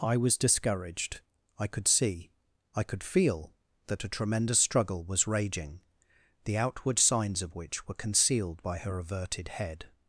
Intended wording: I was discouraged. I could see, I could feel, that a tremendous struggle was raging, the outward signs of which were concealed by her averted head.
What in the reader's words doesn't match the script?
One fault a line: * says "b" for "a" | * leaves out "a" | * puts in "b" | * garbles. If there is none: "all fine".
all fine